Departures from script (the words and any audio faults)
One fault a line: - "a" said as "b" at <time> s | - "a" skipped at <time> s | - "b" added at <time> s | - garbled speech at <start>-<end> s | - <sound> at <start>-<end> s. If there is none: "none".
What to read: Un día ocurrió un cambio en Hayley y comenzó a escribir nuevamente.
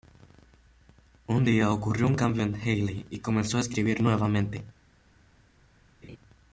- laugh at 6.0-6.2 s